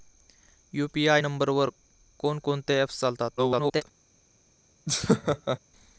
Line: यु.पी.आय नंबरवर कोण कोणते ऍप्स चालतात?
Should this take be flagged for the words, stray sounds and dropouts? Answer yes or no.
yes